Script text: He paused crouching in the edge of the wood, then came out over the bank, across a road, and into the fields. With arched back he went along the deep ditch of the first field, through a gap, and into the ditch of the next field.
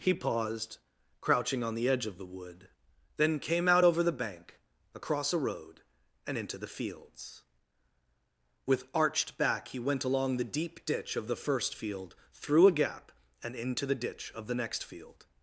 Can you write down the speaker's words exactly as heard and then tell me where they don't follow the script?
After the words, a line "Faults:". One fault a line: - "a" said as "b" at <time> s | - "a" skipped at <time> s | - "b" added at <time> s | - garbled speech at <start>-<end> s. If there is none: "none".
He paused crouching on the edge of the wood, then came out over the bank, across a road, and into the fields. With arched back he went along the deep ditch of the first field, through a gap, and into the ditch of the next field.
Faults:
- "in" said as "on" at 1.6 s